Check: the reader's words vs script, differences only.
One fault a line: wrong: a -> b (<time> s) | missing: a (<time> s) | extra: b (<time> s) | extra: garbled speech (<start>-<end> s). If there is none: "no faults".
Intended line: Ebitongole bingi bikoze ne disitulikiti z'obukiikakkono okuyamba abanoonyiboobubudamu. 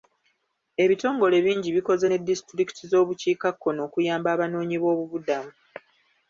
no faults